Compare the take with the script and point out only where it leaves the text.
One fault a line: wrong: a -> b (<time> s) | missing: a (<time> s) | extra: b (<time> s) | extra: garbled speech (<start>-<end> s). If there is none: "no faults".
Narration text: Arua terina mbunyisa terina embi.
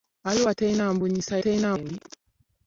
no faults